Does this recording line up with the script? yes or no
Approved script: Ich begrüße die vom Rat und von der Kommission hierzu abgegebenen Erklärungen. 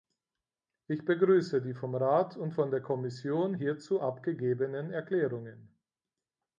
yes